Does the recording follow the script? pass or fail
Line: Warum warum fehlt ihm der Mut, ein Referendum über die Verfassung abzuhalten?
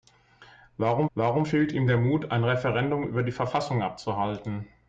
pass